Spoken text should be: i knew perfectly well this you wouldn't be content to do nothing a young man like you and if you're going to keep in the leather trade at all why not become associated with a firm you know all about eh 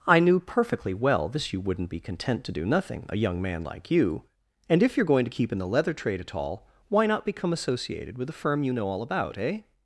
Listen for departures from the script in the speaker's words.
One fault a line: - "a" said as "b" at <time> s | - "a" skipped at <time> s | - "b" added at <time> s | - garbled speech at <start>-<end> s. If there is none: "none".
none